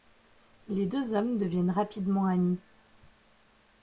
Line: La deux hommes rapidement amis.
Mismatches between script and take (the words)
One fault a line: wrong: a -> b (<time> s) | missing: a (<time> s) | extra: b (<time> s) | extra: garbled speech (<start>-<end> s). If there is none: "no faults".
wrong: La -> Les (0.7 s)
extra: deviennent (1.4 s)